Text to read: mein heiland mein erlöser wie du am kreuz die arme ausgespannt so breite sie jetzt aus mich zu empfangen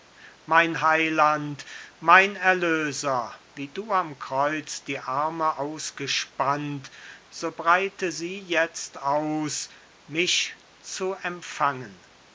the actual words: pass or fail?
pass